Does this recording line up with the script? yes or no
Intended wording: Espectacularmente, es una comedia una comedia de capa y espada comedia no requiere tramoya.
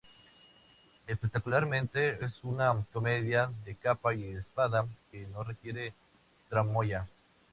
no